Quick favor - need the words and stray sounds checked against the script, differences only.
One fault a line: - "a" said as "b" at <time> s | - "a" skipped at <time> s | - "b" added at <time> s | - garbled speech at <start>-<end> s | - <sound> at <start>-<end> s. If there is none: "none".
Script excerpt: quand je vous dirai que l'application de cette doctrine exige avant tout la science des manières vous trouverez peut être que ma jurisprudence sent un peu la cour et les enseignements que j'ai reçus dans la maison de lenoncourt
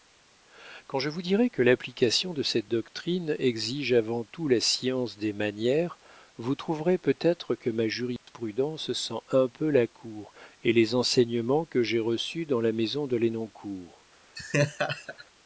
- dropout at 8.2-8.3 s
- laugh at 14.4-15.3 s